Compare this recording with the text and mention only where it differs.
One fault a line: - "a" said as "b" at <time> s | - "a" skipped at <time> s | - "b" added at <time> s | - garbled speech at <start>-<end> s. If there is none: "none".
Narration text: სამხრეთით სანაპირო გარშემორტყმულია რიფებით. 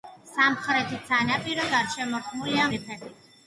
none